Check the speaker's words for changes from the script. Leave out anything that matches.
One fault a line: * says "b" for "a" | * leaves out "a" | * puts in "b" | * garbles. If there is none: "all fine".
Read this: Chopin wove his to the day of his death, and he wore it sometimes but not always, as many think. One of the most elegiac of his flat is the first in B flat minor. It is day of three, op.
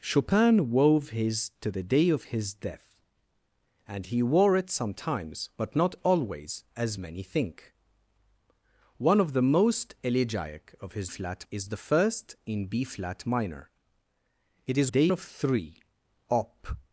all fine